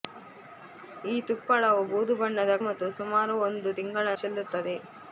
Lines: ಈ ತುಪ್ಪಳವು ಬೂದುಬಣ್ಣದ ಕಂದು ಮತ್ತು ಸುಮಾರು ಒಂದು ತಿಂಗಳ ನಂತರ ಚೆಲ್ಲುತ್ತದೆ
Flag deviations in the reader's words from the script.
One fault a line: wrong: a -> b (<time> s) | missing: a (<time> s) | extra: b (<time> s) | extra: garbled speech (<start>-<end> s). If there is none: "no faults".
missing: ಕಂದು (2.5 s)
missing: ನಂತರ (4.1 s)